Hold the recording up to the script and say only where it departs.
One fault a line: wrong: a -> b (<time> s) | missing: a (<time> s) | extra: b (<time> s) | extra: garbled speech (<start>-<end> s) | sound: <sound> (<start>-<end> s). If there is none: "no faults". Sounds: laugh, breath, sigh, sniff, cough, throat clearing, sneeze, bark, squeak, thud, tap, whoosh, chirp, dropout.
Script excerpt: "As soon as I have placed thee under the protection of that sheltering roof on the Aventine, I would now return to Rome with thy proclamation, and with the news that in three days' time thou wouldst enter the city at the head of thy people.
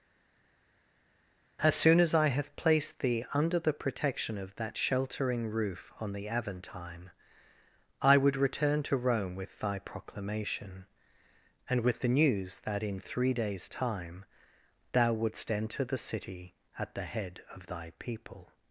missing: now (8.4 s)